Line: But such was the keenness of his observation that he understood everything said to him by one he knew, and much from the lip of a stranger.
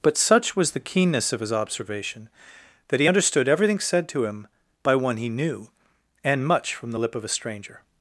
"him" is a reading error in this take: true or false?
false